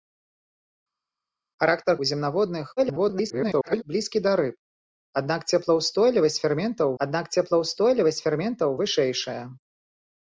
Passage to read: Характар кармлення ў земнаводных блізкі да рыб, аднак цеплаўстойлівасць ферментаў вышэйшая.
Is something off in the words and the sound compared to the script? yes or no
yes